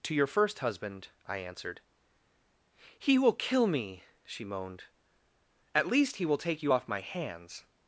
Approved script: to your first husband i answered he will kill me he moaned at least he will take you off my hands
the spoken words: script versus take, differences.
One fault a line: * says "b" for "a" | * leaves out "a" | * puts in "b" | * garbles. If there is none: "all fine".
* says "she" for "he"